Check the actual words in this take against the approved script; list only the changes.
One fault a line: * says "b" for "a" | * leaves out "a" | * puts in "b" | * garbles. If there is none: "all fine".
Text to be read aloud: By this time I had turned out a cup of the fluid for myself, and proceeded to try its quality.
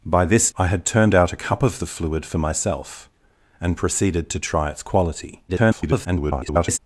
* leaves out "time"
* garbles